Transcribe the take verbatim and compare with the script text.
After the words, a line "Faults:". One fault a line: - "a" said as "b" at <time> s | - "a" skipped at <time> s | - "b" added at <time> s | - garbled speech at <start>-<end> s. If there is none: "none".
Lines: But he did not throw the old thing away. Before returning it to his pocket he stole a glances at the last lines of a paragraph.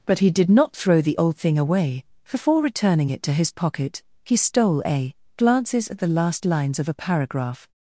But he did not throw the old thing away. Before returning it to his pocket he stole a glances at the last lines of a paragraph.
Faults:
none